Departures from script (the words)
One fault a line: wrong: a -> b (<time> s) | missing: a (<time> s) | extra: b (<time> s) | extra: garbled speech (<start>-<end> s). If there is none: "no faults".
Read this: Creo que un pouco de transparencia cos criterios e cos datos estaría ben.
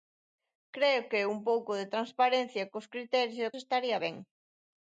missing: cos datos (3.5 s)